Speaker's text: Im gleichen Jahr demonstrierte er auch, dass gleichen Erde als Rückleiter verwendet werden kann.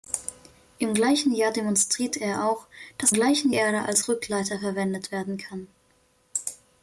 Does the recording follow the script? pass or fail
pass